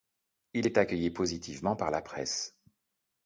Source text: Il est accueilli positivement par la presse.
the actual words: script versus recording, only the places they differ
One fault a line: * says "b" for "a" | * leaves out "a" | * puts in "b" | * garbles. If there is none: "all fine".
all fine